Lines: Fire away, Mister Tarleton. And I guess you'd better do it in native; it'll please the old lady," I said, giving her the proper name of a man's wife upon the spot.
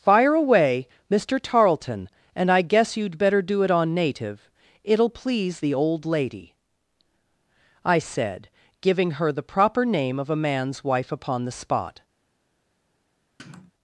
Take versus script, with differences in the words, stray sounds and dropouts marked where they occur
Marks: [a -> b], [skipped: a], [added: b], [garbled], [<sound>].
Fire away, Mister Tarleton. And I guess you'd better do it [in -> on] native; it'll please the old lady," I said, giving her the proper name of a man's wife upon the spot. [sniff]